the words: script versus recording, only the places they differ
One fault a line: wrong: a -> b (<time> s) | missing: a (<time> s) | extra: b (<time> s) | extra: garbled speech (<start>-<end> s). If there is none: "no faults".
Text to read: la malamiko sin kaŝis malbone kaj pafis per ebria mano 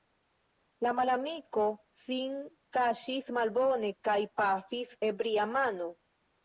missing: per (4.9 s)